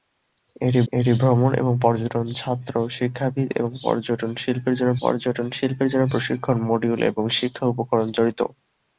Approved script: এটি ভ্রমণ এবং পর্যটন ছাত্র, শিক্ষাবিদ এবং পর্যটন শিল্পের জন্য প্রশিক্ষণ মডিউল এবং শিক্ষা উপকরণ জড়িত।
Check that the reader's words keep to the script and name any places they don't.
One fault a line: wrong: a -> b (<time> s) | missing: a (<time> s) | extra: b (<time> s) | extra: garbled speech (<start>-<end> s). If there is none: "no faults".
extra: এটি (0.9 s)
extra: পর্যটন শিল্পের জন্য (5.0 s)